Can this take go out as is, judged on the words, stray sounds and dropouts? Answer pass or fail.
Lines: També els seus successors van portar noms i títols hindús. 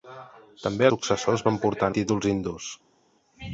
fail